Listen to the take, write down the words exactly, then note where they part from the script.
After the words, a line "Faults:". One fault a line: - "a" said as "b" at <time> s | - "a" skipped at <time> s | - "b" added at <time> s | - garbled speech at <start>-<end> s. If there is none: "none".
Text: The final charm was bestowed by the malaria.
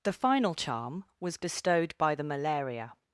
The final charm was bestowed by the malaria.
Faults:
none